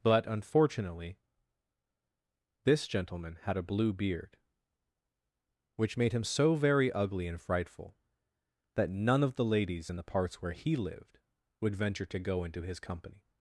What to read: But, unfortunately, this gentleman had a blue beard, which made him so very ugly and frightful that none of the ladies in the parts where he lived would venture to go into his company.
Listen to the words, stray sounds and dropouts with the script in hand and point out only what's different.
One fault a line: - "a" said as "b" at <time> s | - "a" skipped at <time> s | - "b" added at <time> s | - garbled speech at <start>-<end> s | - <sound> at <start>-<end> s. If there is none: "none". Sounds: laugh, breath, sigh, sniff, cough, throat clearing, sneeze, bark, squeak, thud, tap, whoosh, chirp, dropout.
none